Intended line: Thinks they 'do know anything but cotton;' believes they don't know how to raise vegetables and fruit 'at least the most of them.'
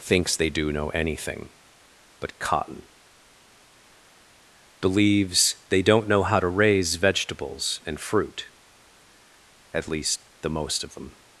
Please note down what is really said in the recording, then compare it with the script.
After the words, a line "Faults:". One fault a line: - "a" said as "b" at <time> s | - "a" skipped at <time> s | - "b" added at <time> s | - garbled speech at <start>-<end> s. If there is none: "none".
Thinks they 'do know anything but cotton;' believes they don't know how to raise vegetables and fruit 'at least the most of them.'
Faults:
none